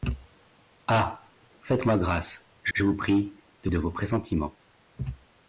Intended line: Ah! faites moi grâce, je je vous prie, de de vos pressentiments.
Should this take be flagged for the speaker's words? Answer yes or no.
no